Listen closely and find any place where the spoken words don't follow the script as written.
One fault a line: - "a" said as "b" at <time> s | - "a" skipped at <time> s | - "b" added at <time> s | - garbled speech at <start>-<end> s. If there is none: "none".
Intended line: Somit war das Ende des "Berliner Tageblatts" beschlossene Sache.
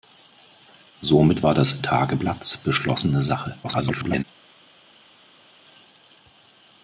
- "Ende des Berliner" skipped at 1.8 s
- garbled speech at 3.6-4.2 s